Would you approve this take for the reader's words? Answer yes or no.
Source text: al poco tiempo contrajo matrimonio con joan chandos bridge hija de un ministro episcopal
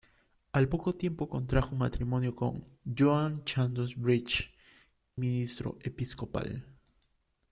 no